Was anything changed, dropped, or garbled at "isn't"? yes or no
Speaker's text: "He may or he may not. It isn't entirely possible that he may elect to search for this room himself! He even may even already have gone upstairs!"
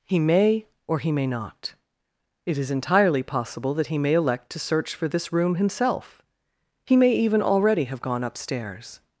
yes